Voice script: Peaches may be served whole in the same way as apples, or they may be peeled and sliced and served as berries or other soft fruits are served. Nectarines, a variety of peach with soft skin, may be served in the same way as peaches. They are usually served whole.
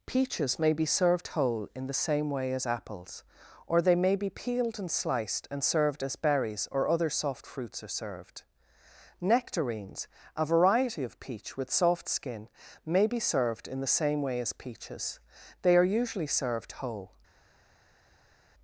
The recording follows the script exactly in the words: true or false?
true